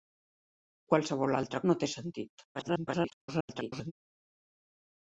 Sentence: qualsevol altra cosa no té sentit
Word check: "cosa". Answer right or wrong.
wrong